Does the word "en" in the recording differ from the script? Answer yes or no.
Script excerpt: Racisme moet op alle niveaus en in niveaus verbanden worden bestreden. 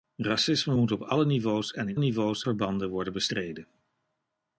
no